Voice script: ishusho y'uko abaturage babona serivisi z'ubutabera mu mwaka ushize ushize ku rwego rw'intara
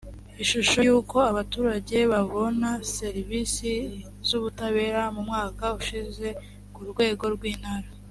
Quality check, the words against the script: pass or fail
fail